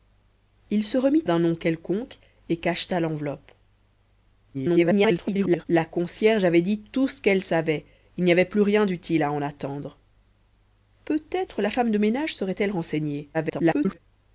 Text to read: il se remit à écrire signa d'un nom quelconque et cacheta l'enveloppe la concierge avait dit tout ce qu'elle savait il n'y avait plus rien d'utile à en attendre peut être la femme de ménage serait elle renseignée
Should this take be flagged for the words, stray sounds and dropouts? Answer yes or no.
yes